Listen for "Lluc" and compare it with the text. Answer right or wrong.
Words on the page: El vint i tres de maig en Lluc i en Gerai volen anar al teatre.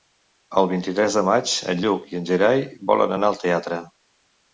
right